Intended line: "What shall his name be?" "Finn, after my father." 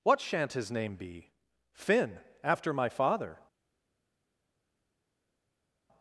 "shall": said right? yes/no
no